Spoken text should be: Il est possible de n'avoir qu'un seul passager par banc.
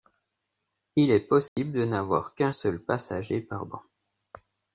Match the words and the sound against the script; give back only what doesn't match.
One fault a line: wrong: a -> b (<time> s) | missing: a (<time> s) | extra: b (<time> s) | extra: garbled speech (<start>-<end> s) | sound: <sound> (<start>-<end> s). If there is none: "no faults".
sound: dropout (1.5-1.6 s)